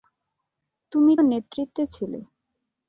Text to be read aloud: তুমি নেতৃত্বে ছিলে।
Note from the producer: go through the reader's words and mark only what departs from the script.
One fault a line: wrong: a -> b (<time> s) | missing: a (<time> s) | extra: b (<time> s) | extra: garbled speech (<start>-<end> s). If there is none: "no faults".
no faults